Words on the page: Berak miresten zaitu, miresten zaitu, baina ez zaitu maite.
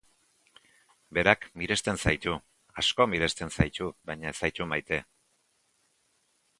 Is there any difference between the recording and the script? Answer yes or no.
yes